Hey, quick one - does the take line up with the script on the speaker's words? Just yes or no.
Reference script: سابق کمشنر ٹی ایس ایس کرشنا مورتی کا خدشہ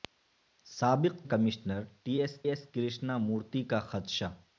yes